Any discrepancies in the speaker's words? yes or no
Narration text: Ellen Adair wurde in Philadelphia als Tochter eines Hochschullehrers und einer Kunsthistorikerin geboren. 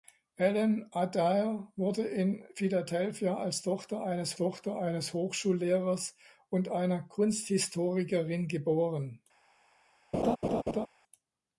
yes